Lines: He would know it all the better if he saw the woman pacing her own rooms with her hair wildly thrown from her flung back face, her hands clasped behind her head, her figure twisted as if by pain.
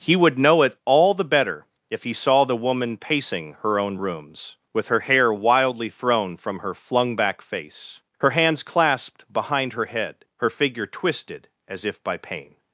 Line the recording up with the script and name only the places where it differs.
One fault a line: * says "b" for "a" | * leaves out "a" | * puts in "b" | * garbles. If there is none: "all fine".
all fine